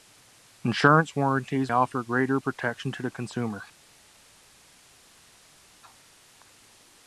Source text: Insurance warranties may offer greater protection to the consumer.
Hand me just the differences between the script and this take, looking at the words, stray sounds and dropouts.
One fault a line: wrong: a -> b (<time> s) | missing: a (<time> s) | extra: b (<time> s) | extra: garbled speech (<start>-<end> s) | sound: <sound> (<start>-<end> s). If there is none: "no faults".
missing: may (1.7 s)